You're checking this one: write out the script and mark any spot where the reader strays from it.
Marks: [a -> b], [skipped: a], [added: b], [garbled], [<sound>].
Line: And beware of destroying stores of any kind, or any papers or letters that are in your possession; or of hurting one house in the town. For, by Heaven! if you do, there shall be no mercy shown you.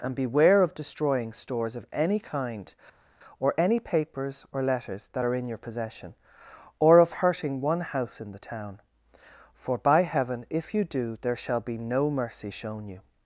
And beware of destroying stores of any kind, or any papers or letters that are in your possession; or of hurting one house in the town. For, by Heaven! if you do, there shall be no mercy shown you.